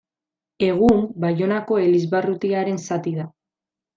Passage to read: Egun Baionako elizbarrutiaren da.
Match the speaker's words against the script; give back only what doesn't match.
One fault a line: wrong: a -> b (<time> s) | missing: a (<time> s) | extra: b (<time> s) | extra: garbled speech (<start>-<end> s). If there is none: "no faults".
extra: zati (2.9 s)